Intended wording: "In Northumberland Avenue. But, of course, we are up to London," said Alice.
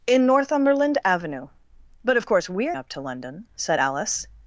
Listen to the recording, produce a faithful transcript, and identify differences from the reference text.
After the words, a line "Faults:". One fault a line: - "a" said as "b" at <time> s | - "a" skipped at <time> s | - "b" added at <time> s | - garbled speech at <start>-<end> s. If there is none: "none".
"In Northumberland Avenue. But, of course, we are up to London," said Alice.
Faults:
none